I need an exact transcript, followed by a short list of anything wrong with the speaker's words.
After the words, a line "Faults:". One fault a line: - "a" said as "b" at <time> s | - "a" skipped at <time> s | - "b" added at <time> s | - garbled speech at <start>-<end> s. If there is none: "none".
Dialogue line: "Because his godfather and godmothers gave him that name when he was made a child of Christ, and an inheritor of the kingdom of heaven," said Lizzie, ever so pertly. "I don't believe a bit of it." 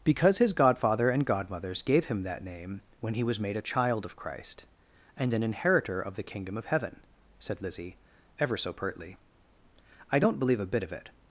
"Because his godfather and godmothers gave him that name when he was made a child of Christ, and an inheritor of the kingdom of heaven," said Lizzie, ever so pertly. "I don't believe a bit of it."
Faults:
none